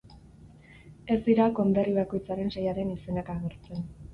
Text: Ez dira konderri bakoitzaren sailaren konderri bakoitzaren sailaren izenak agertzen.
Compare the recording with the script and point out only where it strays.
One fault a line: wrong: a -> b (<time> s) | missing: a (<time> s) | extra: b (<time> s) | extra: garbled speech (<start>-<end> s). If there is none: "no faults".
missing: konderri bakoitzaren sailaren (3.0 s)